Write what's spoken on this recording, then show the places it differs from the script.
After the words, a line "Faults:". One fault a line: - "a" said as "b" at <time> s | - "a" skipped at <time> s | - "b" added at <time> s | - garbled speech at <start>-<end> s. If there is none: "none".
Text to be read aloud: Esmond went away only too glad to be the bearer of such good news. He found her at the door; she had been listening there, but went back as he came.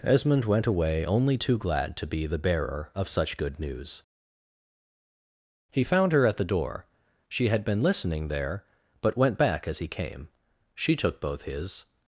Esmond went away only too glad to be the bearer of such good news. He found her at the door; she had been listening there, but went back as he came. She took both his
Faults:
- "She took both his" added at 10.7 s